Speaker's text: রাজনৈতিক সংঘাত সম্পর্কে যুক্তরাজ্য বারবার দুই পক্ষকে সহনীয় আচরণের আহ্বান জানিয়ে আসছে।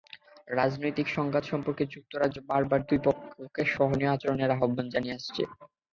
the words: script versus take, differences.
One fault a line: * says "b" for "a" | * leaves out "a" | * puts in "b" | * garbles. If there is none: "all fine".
all fine